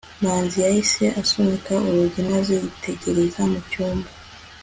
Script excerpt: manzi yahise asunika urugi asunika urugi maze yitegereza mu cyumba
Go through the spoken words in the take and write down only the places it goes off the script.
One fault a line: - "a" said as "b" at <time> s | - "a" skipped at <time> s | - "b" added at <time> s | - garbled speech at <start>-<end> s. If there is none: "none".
- "asunika urugi" skipped at 2.2 s